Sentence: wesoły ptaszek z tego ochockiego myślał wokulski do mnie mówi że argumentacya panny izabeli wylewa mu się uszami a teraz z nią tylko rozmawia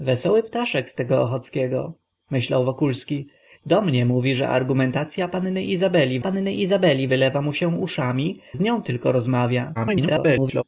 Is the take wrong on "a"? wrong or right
wrong